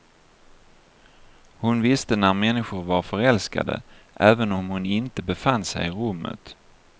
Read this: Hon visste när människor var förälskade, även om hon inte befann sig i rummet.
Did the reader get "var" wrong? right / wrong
right